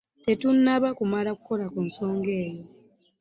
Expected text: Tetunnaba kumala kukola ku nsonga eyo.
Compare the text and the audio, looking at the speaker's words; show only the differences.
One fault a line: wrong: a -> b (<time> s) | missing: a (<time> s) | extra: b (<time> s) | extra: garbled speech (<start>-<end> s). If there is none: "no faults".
no faults